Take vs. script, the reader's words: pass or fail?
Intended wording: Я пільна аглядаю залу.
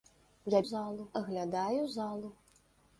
fail